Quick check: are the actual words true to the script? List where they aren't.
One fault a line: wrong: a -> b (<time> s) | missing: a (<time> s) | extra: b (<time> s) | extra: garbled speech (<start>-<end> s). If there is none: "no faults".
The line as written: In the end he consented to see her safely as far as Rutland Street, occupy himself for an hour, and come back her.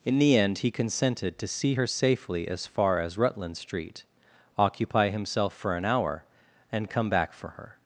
extra: for (7.3 s)